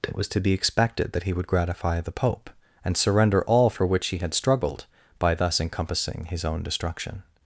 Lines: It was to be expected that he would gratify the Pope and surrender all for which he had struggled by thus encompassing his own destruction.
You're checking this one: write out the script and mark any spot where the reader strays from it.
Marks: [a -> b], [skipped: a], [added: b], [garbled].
It was to be expected that he would gratify the Pope and surrender all for which he had struggled by thus encompassing his own destruction.